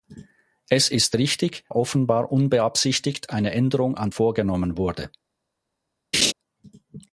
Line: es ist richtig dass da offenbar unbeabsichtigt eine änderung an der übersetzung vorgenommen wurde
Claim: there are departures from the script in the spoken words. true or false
true